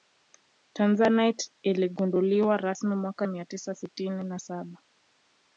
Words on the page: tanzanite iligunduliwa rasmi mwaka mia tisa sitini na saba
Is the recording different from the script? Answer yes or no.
no